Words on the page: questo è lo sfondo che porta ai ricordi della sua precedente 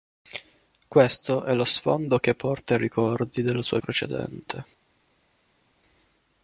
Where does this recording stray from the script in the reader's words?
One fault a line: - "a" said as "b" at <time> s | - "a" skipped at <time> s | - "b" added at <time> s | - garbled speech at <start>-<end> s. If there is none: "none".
none